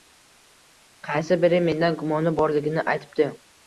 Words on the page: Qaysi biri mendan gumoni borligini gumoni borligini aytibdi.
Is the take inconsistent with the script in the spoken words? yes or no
yes